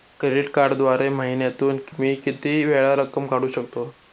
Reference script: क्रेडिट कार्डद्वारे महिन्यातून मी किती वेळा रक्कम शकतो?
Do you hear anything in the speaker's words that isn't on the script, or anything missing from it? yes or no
yes